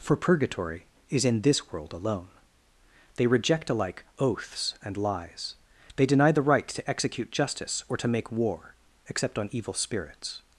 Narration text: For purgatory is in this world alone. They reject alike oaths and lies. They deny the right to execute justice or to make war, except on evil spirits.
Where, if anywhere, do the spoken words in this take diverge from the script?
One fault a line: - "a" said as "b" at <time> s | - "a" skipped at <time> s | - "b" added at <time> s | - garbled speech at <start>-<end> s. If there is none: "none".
none